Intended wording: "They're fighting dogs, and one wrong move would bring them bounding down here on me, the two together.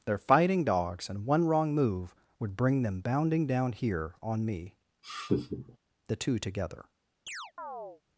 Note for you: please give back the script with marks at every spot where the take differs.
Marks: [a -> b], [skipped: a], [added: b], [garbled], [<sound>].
"They're fighting dogs, and one wrong move would bring them bounding down here on me, [laugh] the two together. [chirp]